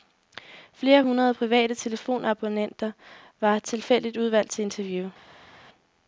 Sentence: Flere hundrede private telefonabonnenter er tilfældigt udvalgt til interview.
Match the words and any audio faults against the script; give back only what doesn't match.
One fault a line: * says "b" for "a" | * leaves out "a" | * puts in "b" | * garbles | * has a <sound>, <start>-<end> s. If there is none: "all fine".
* says "var" for "er"